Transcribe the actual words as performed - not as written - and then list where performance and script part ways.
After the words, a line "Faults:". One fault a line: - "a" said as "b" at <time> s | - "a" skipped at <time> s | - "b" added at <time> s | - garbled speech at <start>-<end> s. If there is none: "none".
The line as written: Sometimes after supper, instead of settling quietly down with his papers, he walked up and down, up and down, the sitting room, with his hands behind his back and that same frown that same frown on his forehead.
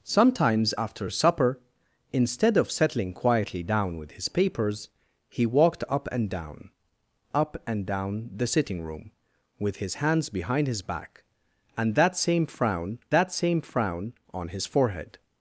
Sometimes after supper, instead of settling quietly down with his papers, he walked up and down, up and down, the sitting room, with his hands behind his back and that same frown that same frown on his forehead.
Faults:
none